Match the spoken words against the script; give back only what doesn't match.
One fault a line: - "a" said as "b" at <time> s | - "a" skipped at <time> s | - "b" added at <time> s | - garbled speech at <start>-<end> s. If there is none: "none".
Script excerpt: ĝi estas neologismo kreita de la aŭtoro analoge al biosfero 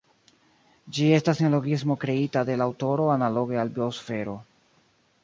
none